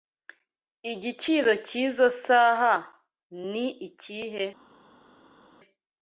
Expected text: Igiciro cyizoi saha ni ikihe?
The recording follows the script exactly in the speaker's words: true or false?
true